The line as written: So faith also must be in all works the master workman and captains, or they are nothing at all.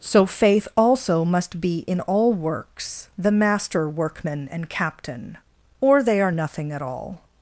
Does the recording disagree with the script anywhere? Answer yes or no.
yes